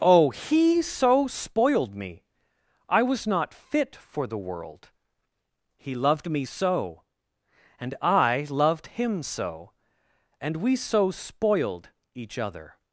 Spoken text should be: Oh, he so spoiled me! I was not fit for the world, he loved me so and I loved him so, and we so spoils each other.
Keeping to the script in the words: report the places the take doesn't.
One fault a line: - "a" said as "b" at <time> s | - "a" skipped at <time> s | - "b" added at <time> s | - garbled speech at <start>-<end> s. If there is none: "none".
- "spoils" said as "spoiled" at 11.1 s